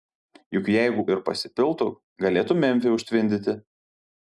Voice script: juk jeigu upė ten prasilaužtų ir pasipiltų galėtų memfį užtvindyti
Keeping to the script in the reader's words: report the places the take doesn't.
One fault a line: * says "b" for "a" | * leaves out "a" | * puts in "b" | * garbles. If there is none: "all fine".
* leaves out "upė ten prasilaužtų"